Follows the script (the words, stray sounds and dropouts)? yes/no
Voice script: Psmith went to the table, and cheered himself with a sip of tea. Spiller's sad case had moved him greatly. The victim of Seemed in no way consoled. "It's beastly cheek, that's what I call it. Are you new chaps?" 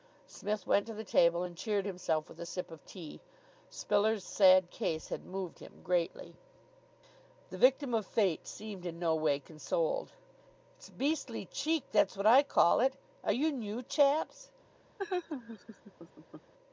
no